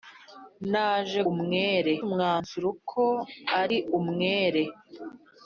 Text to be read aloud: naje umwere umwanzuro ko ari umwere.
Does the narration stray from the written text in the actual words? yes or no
no